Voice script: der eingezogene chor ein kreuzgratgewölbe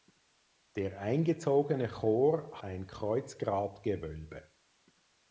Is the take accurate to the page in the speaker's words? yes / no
yes